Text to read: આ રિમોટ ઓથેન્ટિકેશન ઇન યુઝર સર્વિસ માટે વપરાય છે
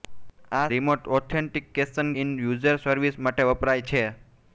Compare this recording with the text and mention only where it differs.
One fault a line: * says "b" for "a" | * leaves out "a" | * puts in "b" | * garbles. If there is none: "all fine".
all fine